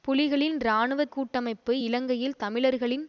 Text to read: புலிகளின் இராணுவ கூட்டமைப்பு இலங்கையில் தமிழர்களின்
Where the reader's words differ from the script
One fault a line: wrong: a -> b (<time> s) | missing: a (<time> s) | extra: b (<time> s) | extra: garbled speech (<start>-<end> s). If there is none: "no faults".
no faults